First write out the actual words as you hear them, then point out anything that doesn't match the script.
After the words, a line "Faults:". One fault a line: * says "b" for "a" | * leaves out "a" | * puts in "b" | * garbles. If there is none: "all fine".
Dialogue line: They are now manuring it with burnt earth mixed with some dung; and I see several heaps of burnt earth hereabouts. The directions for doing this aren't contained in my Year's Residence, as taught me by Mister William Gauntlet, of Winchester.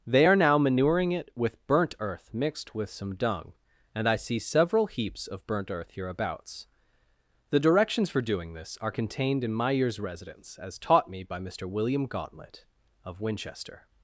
They are now manuring it with burnt earth mixed with some dung; and I see several heaps of burnt earth hereabouts. The directions for doing this are contained in my Year's Residence, as taught me by Mister William Gauntlet, of Winchester.
Faults:
* says "are" for "aren't"